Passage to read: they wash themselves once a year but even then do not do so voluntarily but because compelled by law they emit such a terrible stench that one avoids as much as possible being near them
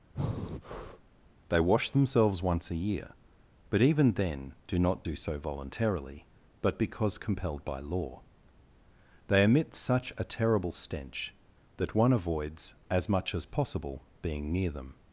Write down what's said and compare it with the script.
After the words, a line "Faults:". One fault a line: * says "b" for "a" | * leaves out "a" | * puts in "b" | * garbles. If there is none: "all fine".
they wash themselves once a year but even then do not do so voluntarily but because compelled by law they emit such a terrible stench that one avoids as much as possible being near them
Faults:
all fine